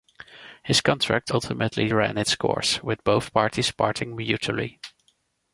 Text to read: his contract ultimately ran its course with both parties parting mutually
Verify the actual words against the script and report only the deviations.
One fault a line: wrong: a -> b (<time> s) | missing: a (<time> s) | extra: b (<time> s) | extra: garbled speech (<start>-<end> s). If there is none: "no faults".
no faults